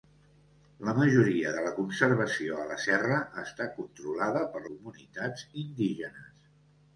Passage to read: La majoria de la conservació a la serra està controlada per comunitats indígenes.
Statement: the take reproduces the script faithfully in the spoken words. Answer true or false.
true